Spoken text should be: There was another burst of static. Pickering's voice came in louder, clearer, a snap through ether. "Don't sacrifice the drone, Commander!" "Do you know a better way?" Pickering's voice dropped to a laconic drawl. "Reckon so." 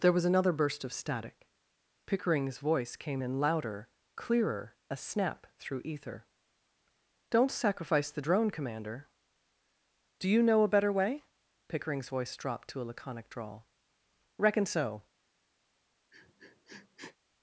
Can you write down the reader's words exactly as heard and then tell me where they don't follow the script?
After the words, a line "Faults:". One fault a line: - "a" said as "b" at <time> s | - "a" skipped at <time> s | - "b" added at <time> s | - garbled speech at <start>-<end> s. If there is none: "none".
There was another burst of static. Pickering's voice came in louder, clearer, a snap through ether. "Don't sacrifice the drone, Commander!" "Do you know a better way?" Pickering's voice dropped to a laconic drawl. "Reckon so."
Faults:
none